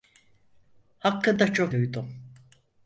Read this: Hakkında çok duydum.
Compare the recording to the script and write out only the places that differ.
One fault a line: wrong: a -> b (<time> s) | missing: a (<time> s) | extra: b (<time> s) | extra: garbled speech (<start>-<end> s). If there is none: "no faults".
no faults